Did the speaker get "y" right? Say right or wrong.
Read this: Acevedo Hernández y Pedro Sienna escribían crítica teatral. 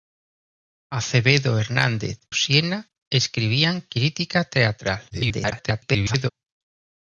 wrong